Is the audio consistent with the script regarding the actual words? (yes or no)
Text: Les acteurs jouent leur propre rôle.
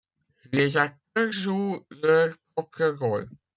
yes